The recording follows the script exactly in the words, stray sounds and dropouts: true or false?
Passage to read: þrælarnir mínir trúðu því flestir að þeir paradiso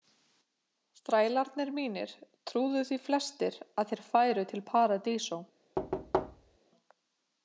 false